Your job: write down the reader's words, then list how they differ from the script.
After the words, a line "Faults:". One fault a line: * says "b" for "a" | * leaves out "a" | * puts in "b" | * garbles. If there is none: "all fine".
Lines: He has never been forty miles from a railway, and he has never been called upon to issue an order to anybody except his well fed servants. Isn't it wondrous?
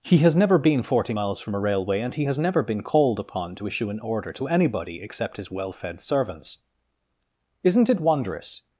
He has never been forty miles from a railway, and he has never been called upon to issue an order to anybody except his well fed servants. Isn't it wondrous?
Faults:
all fine